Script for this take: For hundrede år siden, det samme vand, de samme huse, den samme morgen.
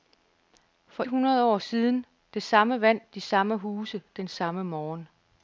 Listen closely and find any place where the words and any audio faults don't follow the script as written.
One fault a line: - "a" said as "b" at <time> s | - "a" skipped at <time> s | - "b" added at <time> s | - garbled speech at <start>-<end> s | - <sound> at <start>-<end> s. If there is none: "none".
none